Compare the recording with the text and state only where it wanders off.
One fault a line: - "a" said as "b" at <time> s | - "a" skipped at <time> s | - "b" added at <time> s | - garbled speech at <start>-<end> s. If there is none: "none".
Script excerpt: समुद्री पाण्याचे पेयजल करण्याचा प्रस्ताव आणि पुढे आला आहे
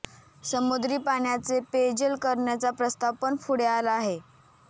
- "आणि" said as "पण" at 3.2 s